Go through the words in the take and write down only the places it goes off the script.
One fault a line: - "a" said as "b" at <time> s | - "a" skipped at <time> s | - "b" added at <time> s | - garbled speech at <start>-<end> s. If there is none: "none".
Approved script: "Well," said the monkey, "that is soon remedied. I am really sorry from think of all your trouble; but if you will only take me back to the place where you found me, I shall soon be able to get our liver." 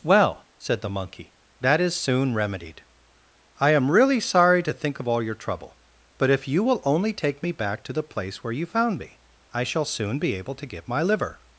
- "from" said as "to" at 4.6 s
- "our" said as "my" at 10.9 s